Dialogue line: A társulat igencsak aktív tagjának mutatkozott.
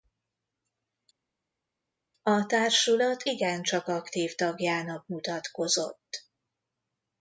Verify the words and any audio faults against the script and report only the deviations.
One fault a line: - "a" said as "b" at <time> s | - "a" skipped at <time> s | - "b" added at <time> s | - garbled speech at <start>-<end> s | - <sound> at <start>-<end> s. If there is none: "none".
none